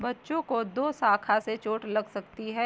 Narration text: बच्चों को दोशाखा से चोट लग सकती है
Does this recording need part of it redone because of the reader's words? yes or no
no